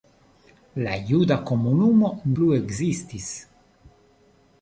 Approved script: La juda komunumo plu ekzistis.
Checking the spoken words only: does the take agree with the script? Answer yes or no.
yes